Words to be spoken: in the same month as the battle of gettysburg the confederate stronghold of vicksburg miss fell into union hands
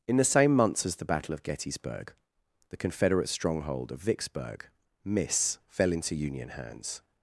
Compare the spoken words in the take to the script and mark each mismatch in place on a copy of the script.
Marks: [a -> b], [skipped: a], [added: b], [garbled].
in the same [month -> months] as the battle of gettysburg the confederate stronghold of vicksburg miss fell into union hands